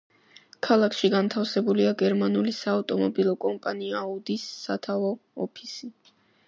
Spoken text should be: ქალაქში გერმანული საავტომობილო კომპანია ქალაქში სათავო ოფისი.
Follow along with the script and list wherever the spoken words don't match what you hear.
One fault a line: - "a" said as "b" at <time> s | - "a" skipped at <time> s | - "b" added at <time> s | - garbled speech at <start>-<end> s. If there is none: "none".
- "განთავსებულია" added at 1.1 s
- "ქალაქში" said as "აუდის" at 4.0 s